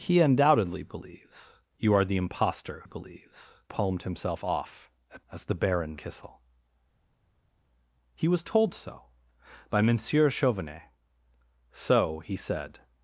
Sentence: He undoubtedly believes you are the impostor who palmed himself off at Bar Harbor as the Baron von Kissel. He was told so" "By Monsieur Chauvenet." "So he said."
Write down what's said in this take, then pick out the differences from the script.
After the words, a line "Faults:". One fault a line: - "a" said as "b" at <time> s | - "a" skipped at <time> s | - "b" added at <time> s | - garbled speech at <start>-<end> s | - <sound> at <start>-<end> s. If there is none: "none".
He undoubtedly believes you are the impostor believes palmed himself off at As the Baron Kissel. He was told so" "By Monsieur Chauvenet." "So he said."
Faults:
- "who" said as "believes" at 2.8 s
- "Bar Harbor" skipped at 5.3 s
- "von" skipped at 6.0 s